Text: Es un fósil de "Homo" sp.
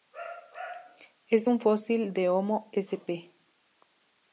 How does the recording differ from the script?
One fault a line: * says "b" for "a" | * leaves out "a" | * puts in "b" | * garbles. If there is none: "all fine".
all fine